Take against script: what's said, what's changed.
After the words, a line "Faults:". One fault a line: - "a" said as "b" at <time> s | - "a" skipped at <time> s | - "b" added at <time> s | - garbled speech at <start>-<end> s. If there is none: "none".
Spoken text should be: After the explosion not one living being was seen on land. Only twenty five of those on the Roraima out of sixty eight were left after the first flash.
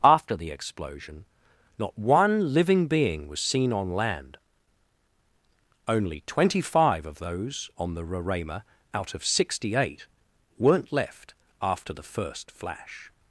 After the explosion not one living being was seen on land. Only twenty five of those on the Roraima out of sixty eight weren't left after the first flash.
Faults:
- "were" said as "weren't" at 10.6 s